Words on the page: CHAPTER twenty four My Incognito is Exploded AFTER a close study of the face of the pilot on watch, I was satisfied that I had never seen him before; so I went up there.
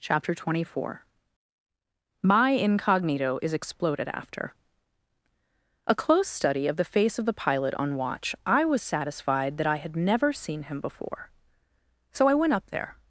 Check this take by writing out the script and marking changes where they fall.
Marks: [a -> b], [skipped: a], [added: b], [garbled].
CHAPTER twenty four My Incognito is Exploded AFTER a close study of the face of the pilot on watch, I was satisfied that I had never seen him before; so I went up there.